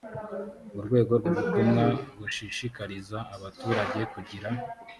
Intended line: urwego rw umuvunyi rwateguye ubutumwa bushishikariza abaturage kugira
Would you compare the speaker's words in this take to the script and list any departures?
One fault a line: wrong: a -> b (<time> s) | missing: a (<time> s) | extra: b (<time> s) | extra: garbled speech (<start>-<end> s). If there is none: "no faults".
missing: umuvunyi rwateguye (1.2 s)